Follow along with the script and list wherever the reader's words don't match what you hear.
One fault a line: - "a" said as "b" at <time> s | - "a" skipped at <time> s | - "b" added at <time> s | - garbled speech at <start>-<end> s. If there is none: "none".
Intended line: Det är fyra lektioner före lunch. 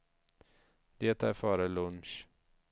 - "fyra lektioner" skipped at 1.3 s